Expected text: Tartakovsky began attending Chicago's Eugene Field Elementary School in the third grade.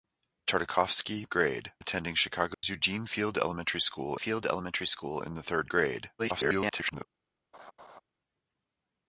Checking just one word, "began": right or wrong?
wrong